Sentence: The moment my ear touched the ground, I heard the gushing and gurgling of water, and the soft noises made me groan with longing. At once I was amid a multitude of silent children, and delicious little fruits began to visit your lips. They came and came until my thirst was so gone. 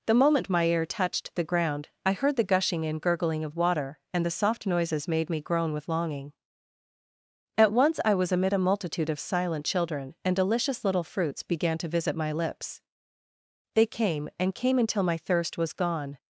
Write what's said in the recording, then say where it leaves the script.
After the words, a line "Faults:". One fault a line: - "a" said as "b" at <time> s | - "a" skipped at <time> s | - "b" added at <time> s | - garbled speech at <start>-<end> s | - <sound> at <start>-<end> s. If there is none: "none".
The moment my ear touched the ground, I heard the gushing and gurgling of water, and the soft noises made me groan with longing. At once I was amid a multitude of silent children, and delicious little fruits began to visit my lips. They came and came until my thirst was gone.
Faults:
- "your" said as "my" at 12.1 s
- "so" skipped at 15.7 s